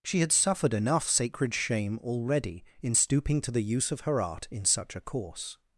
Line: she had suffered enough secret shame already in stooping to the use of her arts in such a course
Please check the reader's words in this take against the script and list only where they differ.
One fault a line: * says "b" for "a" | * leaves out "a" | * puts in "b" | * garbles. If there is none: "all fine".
* says "sacred" for "secret"
* says "art" for "arts"